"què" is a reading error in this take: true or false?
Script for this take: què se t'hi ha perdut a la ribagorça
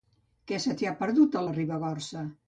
false